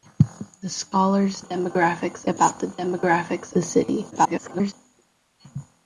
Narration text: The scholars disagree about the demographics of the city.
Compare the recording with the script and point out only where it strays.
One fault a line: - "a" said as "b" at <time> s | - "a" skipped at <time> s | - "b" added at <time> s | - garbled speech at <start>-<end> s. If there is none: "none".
- "disagree" said as "demographics" at 1.4 s
- "of" skipped at 3.6 s
- garbled speech at 4.1-4.7 s